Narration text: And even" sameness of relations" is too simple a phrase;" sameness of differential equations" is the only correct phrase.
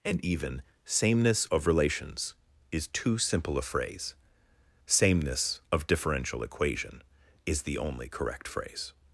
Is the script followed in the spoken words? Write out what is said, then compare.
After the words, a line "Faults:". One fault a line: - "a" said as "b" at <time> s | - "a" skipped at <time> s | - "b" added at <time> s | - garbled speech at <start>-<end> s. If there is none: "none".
And even" sameness of relations" is too simple a phrase;" sameness of differential equation" is the only correct phrase.
Faults:
- "equations" said as "equation" at 6.4 s